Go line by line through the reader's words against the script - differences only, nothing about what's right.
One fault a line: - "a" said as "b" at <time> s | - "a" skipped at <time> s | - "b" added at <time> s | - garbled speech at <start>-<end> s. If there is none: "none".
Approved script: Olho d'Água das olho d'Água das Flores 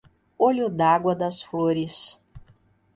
- "olho d'Água das" skipped at 1.4 s